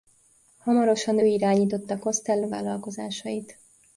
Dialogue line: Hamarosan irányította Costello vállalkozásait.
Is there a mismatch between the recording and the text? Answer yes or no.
no